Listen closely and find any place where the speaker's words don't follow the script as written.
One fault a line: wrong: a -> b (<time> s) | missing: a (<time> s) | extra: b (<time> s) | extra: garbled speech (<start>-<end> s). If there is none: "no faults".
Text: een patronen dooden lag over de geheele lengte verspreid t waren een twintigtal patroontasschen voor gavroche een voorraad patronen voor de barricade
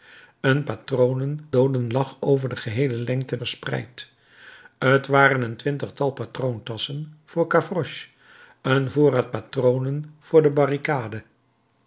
no faults